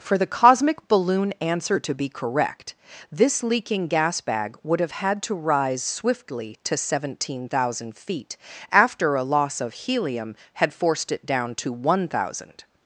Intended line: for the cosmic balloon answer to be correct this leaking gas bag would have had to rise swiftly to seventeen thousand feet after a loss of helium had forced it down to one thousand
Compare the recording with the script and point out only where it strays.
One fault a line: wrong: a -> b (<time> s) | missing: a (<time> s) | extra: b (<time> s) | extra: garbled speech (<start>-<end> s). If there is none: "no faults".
no faults